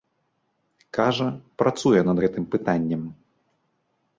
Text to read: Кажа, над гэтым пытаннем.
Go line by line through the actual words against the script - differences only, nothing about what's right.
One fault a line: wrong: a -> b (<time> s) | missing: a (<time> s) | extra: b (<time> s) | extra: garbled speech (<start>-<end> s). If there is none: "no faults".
extra: працуе (1.6 s)